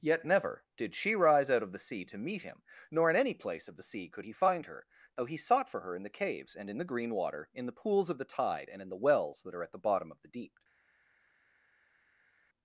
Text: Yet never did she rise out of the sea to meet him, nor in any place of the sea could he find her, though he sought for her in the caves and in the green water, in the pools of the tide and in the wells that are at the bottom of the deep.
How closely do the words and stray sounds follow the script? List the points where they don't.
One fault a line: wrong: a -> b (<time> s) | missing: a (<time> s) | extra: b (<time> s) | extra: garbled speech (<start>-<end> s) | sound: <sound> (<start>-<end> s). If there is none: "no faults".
no faults